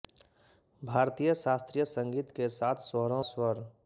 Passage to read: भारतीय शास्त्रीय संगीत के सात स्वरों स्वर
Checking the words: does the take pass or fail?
pass